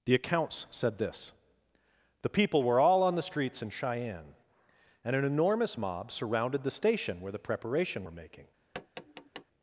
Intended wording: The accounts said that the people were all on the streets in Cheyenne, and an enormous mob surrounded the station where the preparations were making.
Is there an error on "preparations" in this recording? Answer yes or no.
yes